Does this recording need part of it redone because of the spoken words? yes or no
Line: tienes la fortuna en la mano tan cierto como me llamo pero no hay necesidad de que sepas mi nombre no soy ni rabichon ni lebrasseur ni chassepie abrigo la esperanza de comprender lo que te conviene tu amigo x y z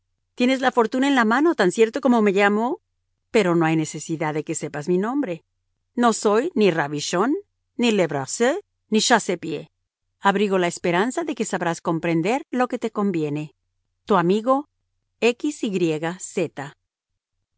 yes